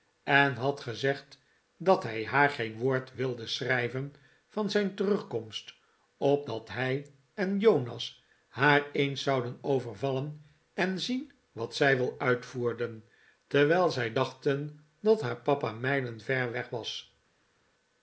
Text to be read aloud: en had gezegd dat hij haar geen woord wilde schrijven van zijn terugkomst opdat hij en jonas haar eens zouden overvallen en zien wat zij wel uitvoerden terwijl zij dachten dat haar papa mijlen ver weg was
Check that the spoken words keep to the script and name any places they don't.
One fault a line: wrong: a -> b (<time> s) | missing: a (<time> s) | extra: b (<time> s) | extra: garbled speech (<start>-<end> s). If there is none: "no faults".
no faults